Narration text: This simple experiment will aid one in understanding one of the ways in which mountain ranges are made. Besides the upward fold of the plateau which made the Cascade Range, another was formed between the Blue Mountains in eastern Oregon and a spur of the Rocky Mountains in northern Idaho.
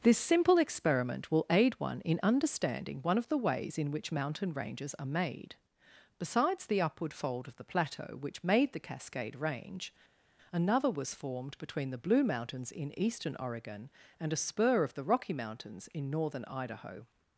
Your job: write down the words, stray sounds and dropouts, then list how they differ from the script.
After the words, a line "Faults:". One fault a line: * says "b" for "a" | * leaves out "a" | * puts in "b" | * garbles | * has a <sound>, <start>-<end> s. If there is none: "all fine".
This simple experiment will aid one in understanding one of the ways in which mountain ranges are made. Besides the upward fold of the plateau which made the Cascade Range, another was formed between the Blue Mountains in eastern Oregon and a spur of the Rocky Mountains in northern Idaho.
Faults:
all fine